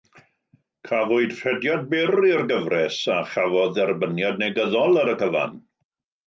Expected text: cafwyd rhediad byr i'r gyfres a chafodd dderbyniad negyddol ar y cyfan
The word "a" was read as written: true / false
true